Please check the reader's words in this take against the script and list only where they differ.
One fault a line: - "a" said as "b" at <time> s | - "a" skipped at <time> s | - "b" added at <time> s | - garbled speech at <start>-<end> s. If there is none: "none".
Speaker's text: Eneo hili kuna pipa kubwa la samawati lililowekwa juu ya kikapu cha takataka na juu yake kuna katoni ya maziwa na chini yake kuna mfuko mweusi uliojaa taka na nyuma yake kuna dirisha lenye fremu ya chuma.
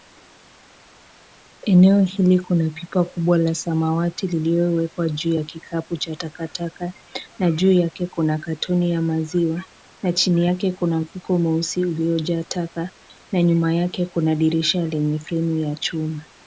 none